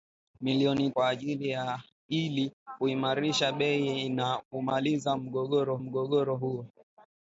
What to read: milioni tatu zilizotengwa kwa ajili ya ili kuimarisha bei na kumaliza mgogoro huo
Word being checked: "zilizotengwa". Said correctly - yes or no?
no